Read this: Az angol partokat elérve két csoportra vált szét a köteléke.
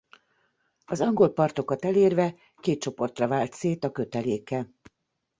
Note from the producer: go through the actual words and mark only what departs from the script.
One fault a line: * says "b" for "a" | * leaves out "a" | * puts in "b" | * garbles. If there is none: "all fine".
all fine